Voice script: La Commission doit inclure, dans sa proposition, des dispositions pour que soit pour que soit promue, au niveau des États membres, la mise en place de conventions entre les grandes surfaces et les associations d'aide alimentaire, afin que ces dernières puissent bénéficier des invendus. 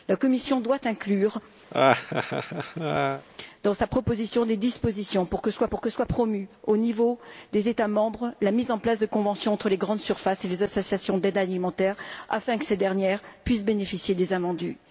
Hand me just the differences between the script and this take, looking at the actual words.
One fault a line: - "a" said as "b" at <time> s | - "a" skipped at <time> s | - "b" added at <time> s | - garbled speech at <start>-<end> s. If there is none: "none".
none